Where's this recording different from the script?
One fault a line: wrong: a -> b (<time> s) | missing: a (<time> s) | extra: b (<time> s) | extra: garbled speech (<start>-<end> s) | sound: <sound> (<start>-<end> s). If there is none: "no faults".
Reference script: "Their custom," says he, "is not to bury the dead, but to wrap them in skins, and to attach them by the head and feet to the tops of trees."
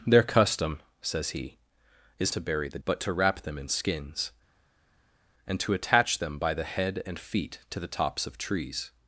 missing: not (2.3 s)
missing: dead (2.8 s)